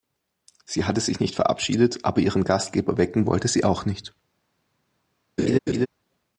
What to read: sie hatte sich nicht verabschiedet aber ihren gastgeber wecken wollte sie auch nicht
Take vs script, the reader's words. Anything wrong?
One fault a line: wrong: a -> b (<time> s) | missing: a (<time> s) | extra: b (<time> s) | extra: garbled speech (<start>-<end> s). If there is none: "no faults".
no faults